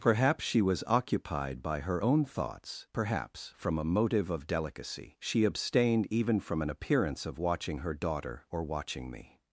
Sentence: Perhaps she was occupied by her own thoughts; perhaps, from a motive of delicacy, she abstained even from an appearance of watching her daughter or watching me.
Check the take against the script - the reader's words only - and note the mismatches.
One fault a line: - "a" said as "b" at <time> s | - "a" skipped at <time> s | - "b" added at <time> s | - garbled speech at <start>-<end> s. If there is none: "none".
none